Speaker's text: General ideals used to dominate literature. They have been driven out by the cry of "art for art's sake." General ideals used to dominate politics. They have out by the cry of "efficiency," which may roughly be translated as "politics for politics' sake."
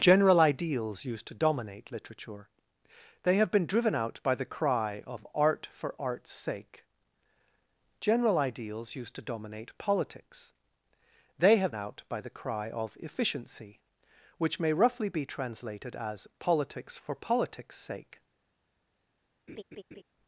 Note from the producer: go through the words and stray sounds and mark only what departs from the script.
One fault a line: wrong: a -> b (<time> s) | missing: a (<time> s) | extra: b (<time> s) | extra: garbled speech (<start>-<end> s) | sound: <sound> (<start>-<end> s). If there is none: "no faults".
sound: laugh (19.5-20.0 s)